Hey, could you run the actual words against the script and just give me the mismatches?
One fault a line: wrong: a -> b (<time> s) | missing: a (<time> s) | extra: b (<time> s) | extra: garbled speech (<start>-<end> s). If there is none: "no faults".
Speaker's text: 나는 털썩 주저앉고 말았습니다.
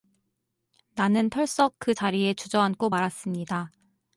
extra: 그 자리에 (1.8 s)